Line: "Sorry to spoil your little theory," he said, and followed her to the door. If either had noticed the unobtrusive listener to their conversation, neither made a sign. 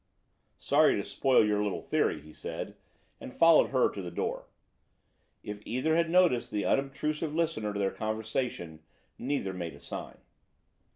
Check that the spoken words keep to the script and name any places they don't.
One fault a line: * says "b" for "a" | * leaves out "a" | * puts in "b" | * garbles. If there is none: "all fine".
all fine